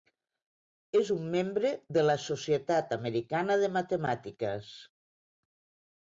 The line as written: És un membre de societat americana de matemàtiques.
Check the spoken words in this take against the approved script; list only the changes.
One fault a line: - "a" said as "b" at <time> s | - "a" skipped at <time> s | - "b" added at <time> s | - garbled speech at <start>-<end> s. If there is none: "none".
- "la" added at 2.1 s